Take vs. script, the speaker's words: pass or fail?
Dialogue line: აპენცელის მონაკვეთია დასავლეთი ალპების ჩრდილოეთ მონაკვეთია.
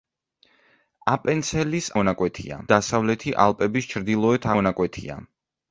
pass